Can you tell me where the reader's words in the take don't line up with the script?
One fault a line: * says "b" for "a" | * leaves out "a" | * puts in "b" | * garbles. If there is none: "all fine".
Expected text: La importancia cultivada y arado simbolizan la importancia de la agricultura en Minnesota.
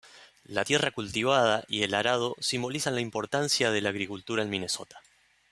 * says "tierra" for "importancia"
* puts in "el"